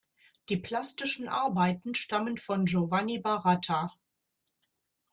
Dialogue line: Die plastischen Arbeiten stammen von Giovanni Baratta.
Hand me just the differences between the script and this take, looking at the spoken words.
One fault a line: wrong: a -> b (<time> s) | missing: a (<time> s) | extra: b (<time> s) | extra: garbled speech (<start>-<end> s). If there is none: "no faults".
no faults